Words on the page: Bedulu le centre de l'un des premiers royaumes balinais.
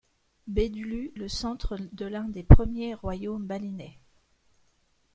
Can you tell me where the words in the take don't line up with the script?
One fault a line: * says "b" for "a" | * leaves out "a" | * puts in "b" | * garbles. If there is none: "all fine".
all fine